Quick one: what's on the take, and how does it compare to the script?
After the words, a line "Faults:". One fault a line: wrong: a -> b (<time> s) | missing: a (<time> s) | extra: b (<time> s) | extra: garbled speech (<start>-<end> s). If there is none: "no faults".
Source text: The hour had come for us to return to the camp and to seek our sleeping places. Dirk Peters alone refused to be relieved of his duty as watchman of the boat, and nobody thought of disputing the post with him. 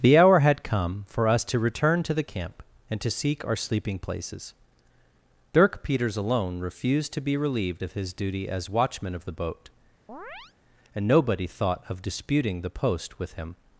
The hour had come for us to return to the camp and to seek our sleeping places. Dirk Peters alone refused to be relieved of his duty as watchman of the boat, and nobody thought of disputing the post with him.
Faults:
no faults